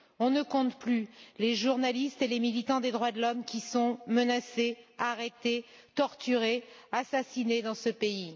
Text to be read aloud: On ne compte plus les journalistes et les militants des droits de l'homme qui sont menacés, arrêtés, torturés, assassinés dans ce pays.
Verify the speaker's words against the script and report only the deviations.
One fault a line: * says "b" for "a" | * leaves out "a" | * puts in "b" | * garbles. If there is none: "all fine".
all fine